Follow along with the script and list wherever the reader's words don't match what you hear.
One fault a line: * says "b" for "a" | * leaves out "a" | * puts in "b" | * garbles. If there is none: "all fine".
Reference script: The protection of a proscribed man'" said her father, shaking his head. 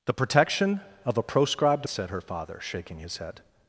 * leaves out "man"